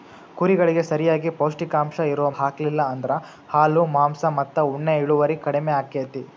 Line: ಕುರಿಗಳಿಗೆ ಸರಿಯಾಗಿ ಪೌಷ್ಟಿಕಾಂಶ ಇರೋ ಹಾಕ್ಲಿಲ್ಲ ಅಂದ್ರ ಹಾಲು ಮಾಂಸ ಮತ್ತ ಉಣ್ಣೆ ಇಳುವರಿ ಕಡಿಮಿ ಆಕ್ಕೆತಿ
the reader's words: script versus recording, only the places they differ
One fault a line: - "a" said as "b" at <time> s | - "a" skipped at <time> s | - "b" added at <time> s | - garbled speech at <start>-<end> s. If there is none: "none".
none